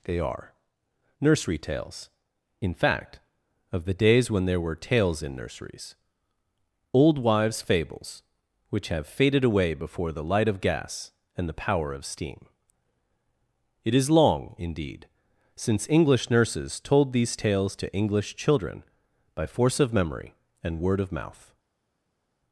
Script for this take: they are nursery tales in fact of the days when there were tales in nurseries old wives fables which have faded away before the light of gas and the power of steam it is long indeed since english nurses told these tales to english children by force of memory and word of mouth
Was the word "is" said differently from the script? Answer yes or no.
no